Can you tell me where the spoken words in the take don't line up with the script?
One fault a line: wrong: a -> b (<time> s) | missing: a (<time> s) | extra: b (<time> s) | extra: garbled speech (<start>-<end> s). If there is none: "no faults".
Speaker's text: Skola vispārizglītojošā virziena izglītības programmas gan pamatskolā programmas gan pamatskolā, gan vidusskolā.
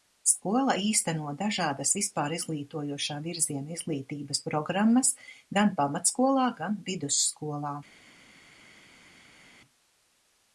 extra: īsteno dažādas (0.8 s)
missing: programmas gan pamatskolā (6.5 s)